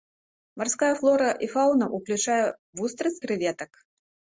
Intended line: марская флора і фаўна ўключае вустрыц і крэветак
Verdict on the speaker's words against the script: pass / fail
fail